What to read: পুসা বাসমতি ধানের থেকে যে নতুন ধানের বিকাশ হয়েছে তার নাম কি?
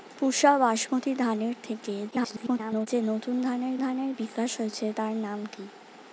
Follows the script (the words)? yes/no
no